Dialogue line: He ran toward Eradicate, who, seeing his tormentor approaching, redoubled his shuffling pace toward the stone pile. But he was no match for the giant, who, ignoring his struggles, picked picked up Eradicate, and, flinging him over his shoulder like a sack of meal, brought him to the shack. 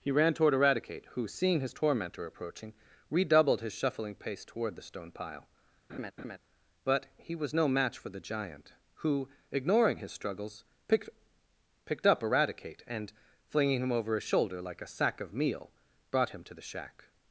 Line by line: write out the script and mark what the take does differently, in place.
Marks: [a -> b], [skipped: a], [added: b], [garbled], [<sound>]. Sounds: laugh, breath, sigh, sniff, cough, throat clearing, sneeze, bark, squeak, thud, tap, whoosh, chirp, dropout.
He ran toward Eradicate, who, seeing his tormentor approaching, redoubled his shuffling pace toward the stone pile. [laugh] But he was no match for the giant, who, ignoring his struggles, picked picked up Eradicate, and, flinging him over his shoulder like a sack of meal, brought him to the shack.